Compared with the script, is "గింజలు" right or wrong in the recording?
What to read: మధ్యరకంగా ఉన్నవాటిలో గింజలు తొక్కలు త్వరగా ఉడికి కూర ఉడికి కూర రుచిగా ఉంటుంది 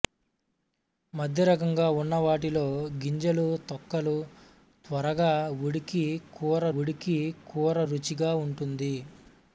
right